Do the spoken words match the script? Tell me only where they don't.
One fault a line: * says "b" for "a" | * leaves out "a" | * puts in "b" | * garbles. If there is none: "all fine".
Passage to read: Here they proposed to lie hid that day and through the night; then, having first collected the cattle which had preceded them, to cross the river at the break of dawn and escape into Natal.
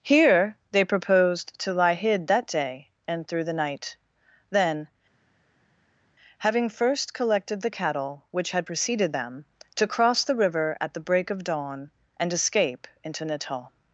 all fine